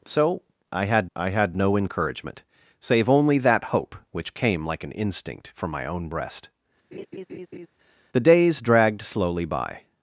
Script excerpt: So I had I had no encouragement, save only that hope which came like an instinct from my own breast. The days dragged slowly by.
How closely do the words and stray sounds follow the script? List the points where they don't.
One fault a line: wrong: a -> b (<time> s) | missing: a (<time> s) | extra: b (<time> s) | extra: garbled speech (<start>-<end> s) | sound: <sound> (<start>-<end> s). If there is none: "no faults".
sound: laugh (6.9-7.7 s)